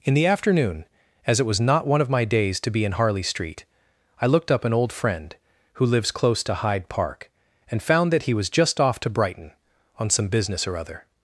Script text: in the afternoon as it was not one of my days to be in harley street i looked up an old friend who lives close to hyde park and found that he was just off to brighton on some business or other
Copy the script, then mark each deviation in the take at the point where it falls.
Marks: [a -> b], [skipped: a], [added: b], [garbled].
in the afternoon as it was not one of my days to be in harley street i looked up an old friend who lives close to hyde park and found that he was just off to brighton on some business or other